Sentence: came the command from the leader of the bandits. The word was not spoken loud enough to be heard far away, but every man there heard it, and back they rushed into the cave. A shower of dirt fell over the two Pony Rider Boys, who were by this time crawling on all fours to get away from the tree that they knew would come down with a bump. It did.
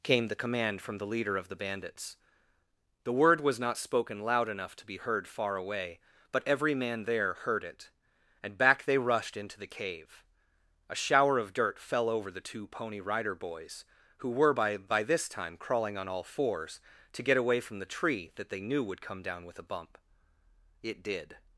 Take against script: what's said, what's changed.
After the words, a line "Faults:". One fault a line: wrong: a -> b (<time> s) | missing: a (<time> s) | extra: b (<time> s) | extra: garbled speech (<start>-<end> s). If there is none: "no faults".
came the command from the leader of the bandits. The word was not spoken loud enough to be heard far away, but every man there heard it, and back they rushed into the cave. A shower of dirt fell over the two Pony Rider Boys, who were by by this time crawling on all fours to get away from the tree that they knew would come down with a bump. It did.
Faults:
extra: by (14.8 s)